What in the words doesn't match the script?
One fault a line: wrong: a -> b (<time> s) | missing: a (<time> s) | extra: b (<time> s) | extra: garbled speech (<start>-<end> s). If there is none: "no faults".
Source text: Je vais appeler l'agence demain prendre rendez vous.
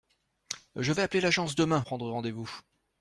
no faults